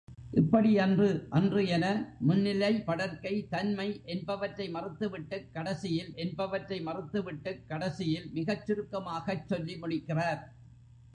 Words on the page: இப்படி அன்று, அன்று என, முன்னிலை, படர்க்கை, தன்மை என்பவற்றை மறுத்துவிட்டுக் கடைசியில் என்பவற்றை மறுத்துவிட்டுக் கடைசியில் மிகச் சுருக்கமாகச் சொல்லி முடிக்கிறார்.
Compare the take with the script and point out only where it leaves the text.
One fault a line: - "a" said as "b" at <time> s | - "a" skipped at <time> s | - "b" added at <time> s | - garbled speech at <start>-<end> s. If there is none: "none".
none